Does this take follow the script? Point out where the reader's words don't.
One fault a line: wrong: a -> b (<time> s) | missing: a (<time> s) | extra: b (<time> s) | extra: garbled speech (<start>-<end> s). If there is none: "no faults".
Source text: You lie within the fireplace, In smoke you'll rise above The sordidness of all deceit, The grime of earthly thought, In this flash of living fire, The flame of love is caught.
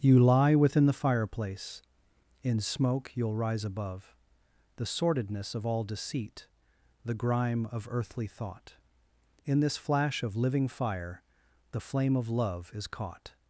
no faults